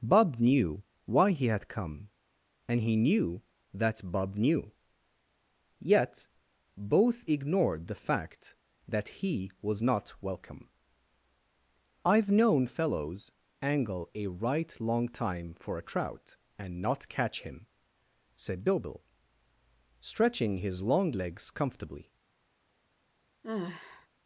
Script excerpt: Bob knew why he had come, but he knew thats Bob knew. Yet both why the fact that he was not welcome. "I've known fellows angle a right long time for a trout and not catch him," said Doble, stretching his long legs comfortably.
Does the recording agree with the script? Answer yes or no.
no